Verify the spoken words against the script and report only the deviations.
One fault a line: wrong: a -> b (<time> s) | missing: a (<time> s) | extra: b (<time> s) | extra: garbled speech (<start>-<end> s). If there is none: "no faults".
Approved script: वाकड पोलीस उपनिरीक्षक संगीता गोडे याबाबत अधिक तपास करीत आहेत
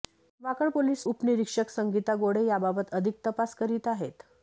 no faults